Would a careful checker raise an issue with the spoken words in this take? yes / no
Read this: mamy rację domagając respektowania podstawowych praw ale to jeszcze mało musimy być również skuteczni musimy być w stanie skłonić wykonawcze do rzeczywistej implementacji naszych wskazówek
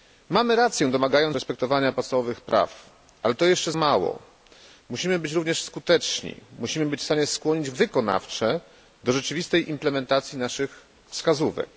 no